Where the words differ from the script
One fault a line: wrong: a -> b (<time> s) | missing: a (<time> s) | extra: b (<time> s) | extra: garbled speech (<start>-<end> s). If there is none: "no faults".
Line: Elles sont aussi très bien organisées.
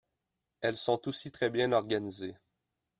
no faults